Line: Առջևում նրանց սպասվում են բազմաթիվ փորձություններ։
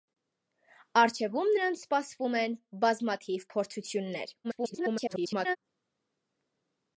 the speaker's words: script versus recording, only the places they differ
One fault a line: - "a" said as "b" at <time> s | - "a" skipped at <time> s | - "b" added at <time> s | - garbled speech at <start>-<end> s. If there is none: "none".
- garbled speech at 4.4-5.6 s